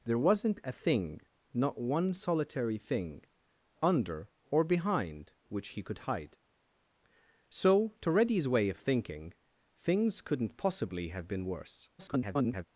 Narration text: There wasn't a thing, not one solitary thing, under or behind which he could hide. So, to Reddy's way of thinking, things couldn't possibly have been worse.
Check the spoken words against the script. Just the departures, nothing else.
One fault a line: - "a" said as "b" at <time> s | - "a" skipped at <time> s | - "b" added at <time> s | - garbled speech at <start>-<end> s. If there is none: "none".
- garbled speech at 12.0-12.7 s